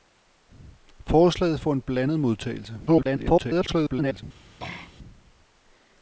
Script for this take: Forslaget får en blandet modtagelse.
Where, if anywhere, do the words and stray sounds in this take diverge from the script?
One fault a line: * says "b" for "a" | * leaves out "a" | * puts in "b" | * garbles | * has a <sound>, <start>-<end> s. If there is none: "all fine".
* garbles
* has a throat clearing, 4.6-4.9 s